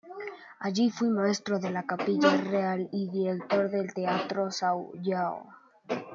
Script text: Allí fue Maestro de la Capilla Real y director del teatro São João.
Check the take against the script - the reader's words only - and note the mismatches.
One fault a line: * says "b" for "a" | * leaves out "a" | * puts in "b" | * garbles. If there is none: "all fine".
all fine